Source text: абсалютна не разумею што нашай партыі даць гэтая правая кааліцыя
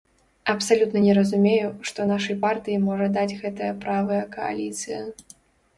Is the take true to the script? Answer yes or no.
no